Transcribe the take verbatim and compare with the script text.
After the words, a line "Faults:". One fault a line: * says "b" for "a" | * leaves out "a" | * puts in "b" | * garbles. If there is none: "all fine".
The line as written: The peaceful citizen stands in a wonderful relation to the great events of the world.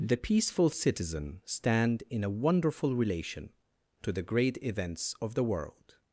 The peaceful citizen stand in a wonderful relation to the great events of the world.
Faults:
* says "stand" for "stands"